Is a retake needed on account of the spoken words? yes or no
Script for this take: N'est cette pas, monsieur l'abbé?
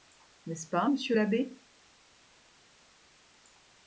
yes